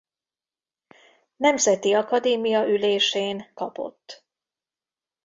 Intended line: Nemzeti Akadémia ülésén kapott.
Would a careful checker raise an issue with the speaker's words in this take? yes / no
no